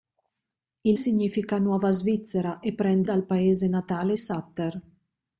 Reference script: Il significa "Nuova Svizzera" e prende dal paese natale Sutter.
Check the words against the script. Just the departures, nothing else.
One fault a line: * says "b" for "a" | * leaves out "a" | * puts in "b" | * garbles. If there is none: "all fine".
all fine